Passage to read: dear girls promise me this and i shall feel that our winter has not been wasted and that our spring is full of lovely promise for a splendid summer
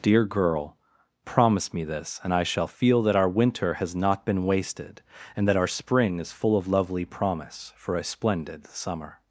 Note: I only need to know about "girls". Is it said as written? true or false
false